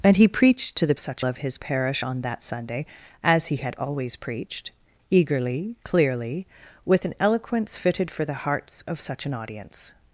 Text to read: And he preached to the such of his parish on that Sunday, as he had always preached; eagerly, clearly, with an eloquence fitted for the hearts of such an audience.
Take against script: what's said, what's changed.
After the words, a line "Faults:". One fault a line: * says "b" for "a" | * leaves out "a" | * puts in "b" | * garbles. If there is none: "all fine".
And he preached to the such of his parish on that Sunday, as he had always preached; eagerly, clearly, with an eloquence fitted for the hearts of such an audience.
Faults:
all fine